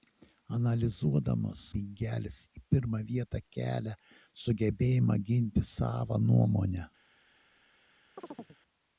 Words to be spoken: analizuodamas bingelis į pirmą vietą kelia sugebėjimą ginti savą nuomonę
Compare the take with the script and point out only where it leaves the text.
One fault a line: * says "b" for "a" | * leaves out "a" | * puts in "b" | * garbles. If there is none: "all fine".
all fine